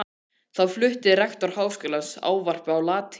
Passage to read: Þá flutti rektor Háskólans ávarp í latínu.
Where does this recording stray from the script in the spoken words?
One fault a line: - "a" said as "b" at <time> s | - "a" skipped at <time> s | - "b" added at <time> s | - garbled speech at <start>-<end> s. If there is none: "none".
- "í" said as "á" at 2.7 s